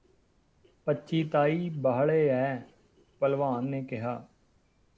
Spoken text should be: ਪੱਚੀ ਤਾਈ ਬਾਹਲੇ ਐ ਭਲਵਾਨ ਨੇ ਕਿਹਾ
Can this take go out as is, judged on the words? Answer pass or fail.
pass